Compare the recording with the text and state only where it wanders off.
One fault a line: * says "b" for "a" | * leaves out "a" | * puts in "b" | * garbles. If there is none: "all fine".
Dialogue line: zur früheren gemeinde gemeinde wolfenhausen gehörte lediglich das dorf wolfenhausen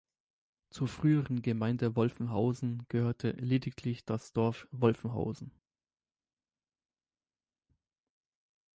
* leaves out "gemeinde"